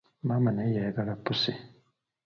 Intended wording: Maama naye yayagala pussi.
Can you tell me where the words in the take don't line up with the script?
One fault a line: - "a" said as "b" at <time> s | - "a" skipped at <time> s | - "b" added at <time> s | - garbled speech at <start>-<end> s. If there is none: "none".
none